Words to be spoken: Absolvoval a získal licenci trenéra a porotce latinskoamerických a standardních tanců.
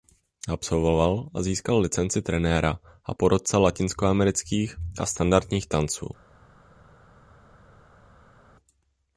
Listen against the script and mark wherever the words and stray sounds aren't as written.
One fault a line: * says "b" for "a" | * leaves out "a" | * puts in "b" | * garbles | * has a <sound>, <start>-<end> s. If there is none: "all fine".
all fine